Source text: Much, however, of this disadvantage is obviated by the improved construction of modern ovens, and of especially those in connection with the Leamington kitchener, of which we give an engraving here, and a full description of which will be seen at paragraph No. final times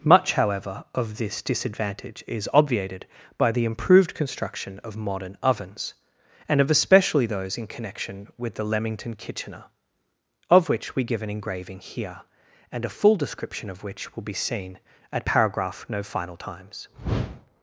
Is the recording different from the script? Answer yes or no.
no